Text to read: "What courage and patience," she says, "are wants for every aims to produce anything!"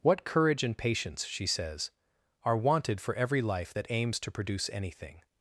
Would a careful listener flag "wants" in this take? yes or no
yes